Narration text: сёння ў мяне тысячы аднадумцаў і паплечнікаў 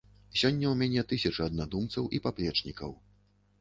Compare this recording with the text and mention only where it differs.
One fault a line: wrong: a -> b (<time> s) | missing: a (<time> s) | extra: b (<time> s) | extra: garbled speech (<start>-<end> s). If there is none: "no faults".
no faults